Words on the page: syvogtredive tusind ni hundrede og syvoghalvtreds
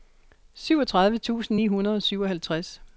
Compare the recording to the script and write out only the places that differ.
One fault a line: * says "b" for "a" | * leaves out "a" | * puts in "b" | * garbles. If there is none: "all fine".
all fine